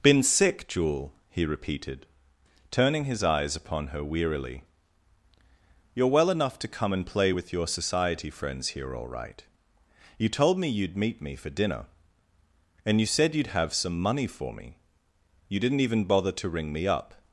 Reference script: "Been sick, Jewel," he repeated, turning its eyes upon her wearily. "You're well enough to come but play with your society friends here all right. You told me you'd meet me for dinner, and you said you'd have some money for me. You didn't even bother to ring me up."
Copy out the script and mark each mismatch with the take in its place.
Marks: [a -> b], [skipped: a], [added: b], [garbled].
"Been sick, Jewel," he repeated, turning [its -> his] eyes upon her wearily. "You're well enough to come [but -> and] play with your society friends here all right. You told me you'd meet me for dinner, and you said you'd have some money for me. You didn't even bother to ring me up."